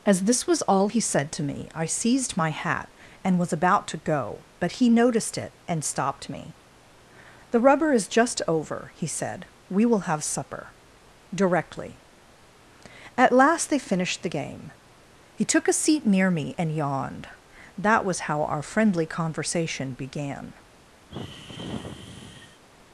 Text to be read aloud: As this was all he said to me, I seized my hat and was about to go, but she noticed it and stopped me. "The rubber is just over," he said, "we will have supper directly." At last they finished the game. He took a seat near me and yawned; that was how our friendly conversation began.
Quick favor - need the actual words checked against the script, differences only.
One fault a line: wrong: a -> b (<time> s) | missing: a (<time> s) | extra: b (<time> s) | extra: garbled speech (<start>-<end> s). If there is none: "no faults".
wrong: she -> he (4.7 s)